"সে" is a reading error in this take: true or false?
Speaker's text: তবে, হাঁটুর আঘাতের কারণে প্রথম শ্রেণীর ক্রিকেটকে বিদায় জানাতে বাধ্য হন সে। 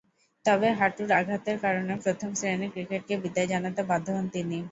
true